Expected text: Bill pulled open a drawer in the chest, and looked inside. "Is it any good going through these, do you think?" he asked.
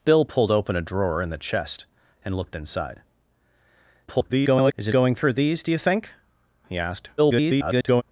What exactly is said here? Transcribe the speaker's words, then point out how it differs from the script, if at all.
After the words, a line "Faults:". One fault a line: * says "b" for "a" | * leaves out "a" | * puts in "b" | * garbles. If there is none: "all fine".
Bill pulled open a drawer in the chest, and looked inside. [garbled] "Is it going through these, do you think?" he asked. [garbled]
Faults:
* garbles
* leaves out "any good"
* garbles